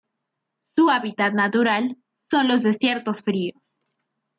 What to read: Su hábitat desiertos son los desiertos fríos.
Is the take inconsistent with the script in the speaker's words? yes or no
yes